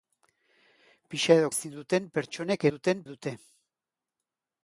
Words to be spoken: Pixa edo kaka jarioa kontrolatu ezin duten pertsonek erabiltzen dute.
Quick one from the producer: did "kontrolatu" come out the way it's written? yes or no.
no